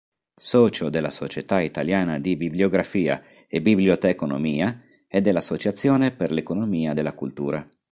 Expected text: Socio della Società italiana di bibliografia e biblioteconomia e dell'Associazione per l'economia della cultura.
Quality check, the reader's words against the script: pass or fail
pass